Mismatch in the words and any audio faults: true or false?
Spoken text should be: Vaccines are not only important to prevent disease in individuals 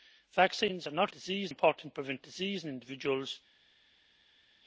true